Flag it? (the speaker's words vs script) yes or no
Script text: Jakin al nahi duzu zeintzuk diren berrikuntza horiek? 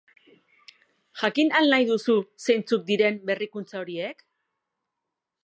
no